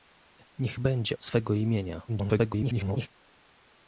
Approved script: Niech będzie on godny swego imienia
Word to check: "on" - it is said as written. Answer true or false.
false